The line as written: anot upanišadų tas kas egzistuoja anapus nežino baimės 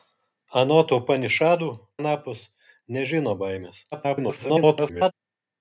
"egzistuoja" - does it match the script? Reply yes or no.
no